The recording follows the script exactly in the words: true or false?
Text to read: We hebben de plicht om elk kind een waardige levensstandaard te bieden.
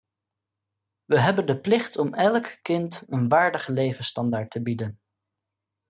true